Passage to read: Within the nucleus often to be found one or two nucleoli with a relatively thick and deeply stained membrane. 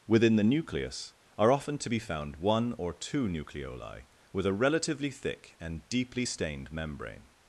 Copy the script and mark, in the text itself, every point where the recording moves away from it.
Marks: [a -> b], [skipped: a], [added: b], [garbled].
Within the nucleus [added: are] often to be found one or two nucleoli with a relatively thick and deeply stained membrane.